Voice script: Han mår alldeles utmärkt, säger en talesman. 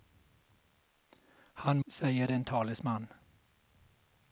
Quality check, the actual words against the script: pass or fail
fail